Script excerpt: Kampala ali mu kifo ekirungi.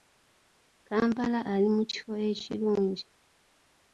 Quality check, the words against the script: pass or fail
pass